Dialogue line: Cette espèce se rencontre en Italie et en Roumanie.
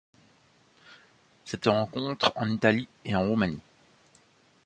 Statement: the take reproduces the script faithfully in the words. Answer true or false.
false